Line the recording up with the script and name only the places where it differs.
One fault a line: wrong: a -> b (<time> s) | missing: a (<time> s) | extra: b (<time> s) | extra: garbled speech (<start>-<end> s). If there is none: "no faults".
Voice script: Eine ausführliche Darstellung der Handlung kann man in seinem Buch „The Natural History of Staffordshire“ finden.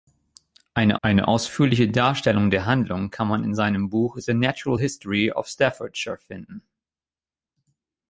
extra: eine (1.0 s)